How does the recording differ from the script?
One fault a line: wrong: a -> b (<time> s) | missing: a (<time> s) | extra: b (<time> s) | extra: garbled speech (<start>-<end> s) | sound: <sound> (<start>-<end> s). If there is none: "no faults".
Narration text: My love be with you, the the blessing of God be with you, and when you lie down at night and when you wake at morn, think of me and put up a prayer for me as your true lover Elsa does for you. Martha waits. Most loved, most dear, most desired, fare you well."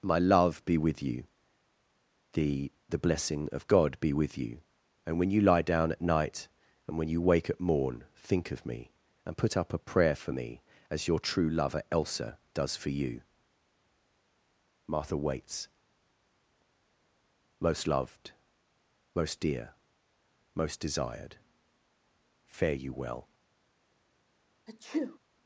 sound: sneeze (24.7-25.2 s)